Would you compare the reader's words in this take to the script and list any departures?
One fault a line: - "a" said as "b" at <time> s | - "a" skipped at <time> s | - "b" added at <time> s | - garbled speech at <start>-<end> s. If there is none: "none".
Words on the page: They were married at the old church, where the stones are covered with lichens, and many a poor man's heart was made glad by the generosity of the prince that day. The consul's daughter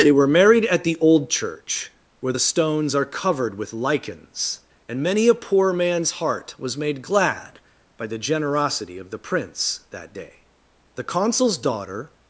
none